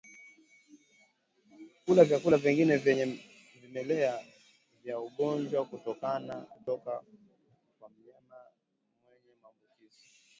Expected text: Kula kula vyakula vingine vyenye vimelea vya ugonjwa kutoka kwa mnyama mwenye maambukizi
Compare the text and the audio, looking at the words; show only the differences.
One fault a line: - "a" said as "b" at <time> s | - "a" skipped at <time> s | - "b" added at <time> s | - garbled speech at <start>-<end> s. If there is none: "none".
- "kula" skipped at 2.0 s